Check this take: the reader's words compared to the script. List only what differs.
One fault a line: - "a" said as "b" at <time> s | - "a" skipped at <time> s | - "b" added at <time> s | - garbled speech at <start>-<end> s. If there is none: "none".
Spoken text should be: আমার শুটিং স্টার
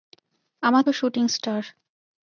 none